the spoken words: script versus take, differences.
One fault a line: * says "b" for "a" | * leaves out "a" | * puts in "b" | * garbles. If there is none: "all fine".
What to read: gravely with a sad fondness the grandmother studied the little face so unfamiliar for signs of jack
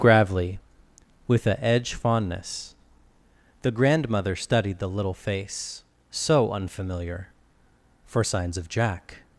* says "edge" for "sad"